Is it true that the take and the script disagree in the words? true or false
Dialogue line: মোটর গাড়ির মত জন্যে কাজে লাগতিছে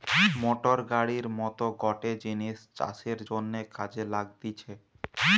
true